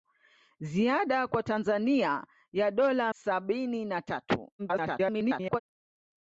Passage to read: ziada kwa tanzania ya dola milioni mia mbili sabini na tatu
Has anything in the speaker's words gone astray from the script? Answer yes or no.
yes